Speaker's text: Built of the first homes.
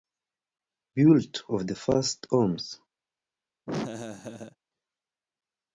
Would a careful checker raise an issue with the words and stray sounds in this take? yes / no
yes